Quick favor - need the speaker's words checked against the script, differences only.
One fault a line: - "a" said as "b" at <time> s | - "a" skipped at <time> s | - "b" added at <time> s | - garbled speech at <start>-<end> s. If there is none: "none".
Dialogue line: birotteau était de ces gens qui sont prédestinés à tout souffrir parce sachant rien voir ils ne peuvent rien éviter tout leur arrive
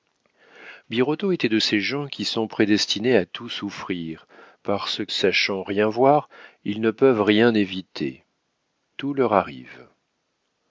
none